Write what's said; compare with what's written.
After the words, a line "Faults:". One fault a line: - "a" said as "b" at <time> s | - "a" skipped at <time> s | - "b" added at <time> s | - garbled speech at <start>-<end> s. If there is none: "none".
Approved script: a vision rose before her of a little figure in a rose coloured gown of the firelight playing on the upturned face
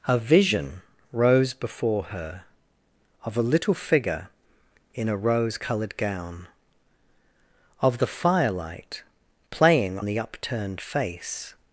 a vision rose before her of a little figure in a rose coloured gown of the firelight playing the upturned face
Faults:
- "on" skipped at 10.0 s